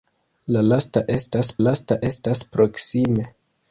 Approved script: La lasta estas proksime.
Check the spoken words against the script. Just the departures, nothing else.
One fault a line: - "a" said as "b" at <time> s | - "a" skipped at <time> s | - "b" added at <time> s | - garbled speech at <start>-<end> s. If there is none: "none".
- "lasta estas" added at 1.6 s